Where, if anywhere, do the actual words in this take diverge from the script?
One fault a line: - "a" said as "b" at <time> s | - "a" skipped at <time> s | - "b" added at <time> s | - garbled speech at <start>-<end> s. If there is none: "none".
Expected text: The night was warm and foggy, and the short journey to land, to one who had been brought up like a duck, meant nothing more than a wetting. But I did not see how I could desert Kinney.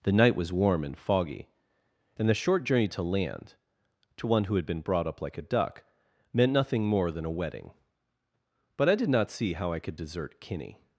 none